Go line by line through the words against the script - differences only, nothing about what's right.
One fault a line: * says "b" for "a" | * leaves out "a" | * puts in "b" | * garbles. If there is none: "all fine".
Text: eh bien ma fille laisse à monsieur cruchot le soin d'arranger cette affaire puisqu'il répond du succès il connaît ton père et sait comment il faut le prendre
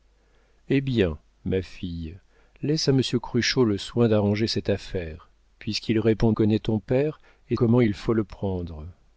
* leaves out "du succès il"
* leaves out "sait"